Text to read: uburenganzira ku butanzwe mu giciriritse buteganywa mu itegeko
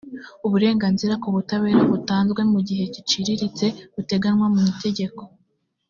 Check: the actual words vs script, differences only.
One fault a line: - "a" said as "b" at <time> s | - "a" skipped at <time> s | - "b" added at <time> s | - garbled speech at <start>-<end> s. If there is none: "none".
- "butabera" added at 1.4 s
- "gihe" added at 2.7 s